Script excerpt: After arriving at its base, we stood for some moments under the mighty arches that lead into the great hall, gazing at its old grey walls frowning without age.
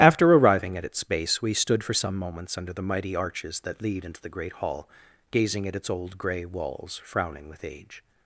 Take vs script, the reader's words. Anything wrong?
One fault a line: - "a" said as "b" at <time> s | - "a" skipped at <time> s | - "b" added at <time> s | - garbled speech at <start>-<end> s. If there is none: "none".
- "without" said as "with" at 7.5 s